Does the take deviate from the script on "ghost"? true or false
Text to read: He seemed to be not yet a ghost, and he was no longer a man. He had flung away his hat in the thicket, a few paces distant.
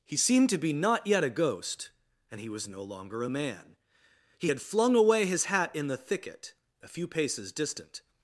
false